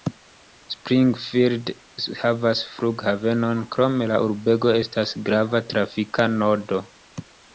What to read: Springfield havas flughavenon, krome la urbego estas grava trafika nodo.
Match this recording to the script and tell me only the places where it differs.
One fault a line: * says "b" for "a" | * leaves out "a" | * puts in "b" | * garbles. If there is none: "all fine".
all fine